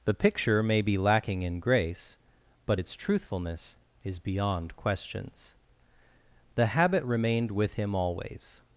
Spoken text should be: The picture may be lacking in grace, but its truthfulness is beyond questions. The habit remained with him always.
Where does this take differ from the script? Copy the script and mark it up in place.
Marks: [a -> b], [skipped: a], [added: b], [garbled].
The picture may be lacking in grace, but its truthfulness is beyond questions. The habit remained with him always.